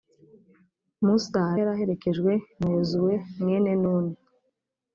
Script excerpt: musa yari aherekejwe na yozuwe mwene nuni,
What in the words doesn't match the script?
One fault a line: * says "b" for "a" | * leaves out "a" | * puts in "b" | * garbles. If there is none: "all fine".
all fine